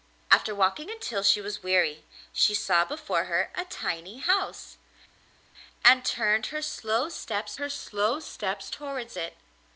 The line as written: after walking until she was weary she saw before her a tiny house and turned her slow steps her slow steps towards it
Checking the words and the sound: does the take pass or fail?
pass